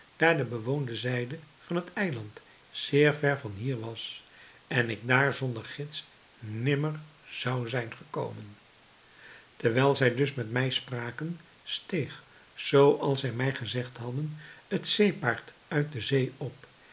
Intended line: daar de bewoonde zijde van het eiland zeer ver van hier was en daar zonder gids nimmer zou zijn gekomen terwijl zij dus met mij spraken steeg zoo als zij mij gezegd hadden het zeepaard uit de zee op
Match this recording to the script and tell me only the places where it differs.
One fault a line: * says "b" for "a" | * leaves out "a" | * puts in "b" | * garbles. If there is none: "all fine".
* puts in "ik"